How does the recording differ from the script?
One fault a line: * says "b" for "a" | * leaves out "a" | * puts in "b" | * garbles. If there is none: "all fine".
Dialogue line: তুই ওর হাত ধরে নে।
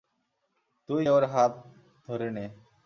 all fine